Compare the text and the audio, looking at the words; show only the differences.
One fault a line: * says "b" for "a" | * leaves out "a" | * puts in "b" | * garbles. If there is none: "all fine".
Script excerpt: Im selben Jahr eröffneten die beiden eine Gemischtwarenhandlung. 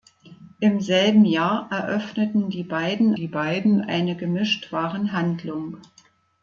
* puts in "die beiden"